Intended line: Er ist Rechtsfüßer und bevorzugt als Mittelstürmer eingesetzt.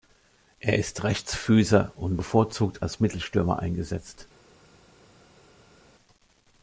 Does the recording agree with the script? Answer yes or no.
yes